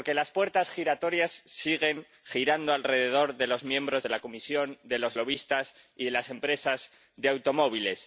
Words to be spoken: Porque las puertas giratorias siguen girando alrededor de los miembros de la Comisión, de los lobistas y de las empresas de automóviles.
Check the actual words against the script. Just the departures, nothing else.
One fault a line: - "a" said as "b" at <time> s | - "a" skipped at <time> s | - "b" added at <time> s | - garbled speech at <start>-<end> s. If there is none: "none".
none